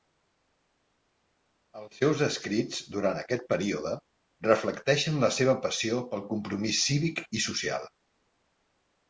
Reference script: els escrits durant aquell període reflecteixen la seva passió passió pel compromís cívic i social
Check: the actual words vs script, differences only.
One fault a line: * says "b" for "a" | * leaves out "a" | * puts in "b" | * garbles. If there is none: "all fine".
* puts in "seus"
* says "aquest" for "aquell"
* leaves out "passió"